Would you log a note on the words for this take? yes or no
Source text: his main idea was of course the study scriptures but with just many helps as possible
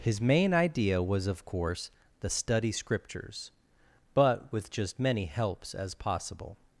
no